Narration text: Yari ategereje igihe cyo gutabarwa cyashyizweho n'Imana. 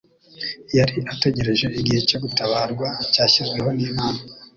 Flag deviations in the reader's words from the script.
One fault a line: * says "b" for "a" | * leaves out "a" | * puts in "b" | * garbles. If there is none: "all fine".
all fine